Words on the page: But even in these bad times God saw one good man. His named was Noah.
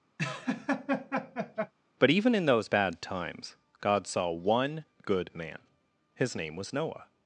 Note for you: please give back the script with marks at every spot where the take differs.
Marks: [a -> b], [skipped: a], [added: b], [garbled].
But even in [these -> those] bad times God saw one good man. His [named -> name] was Noah.